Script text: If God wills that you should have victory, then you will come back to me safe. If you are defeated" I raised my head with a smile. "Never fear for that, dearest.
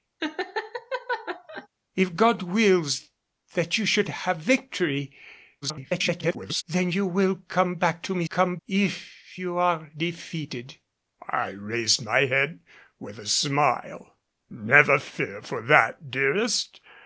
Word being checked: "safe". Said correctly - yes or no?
no